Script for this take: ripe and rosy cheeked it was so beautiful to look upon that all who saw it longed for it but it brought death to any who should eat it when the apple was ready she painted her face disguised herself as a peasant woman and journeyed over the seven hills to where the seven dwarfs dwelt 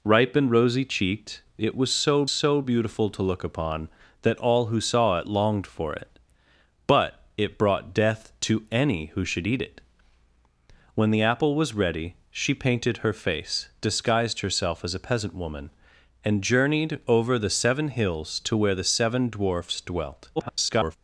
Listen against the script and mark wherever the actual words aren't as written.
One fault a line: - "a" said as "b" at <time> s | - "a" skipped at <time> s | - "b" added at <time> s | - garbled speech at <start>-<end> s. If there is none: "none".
- "so" added at 2.3 s
- garbled speech at 20.4-21.0 s